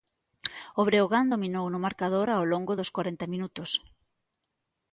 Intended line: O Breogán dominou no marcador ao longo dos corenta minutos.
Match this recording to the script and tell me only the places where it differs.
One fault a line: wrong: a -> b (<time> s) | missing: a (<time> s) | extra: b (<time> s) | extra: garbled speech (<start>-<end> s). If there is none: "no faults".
no faults